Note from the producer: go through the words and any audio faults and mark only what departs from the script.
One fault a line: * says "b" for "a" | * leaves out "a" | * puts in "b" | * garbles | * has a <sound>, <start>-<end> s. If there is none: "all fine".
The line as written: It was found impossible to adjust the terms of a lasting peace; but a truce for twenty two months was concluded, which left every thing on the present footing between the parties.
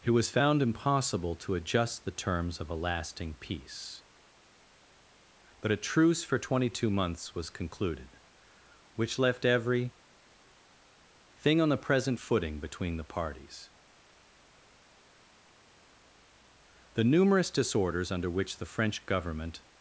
* puts in "The numerous disorders under which the French government"